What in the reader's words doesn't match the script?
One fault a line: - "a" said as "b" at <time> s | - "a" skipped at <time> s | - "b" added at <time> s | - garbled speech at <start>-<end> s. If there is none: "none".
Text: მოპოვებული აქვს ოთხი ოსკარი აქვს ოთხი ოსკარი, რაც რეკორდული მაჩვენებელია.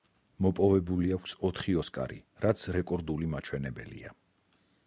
- "აქვს ოთხი ოსკარი" skipped at 2.2 s